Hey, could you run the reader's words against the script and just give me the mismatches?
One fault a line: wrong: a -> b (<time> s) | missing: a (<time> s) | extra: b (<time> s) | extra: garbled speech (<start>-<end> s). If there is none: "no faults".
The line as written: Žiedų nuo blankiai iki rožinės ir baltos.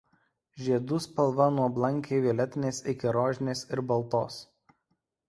extra: spalva (1.1 s)
extra: violetinės (2.3 s)